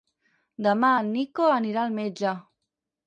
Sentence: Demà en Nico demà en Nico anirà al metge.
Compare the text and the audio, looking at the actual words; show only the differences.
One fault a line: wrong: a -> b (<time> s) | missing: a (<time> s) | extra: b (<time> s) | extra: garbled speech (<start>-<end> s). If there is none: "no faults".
missing: demà en Nico (1.5 s)